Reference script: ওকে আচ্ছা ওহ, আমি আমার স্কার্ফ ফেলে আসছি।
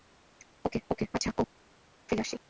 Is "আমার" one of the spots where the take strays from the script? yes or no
yes